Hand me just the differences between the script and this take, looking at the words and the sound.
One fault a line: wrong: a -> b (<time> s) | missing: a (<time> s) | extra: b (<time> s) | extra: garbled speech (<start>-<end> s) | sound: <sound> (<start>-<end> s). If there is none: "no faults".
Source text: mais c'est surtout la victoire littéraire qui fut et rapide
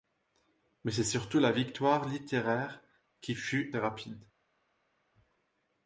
no faults